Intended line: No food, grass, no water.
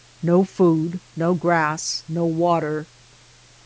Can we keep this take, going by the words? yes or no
no